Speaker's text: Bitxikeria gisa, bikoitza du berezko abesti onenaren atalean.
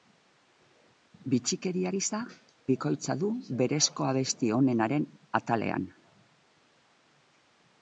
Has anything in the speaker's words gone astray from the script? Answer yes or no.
no